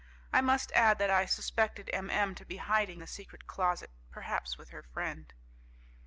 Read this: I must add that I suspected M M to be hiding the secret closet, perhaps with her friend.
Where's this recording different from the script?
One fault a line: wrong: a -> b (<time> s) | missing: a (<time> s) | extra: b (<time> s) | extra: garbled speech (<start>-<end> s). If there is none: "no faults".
no faults